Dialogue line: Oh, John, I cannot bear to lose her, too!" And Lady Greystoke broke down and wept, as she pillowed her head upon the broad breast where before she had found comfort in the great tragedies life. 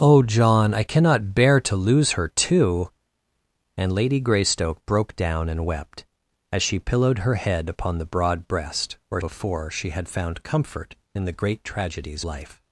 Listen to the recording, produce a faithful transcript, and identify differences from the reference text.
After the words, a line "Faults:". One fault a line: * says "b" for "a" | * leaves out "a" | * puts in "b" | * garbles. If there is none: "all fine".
Oh, John, I cannot bear to lose her, too!" And Lady Greystoke broke down and wept, as she pillowed her head upon the broad breast where before she had found comfort in the great tragedies life.
Faults:
all fine